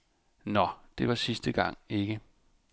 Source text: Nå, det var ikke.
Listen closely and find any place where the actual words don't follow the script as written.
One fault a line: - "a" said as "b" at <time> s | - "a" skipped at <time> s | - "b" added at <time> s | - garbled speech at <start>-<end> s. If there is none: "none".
- "sidste gang" added at 1.1 s